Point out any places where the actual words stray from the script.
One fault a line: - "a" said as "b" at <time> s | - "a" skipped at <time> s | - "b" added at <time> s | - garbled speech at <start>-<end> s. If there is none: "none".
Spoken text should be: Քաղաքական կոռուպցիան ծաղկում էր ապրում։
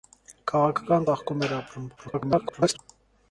- "կոռուպցիան" skipped at 1.1 s
- garbled speech at 2.0-2.8 s